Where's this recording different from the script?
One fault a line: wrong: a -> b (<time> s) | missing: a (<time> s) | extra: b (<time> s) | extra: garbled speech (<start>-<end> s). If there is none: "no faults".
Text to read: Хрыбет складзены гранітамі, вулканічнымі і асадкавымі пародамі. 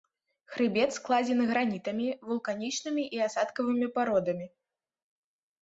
no faults